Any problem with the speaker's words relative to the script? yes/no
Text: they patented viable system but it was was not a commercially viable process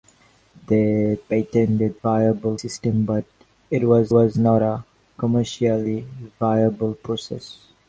no